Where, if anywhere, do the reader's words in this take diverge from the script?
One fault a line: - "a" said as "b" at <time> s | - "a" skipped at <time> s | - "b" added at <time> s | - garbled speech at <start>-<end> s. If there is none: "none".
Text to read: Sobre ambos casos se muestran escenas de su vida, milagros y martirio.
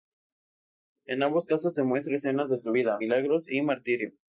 - "Sobre" said as "En" at 1.1 s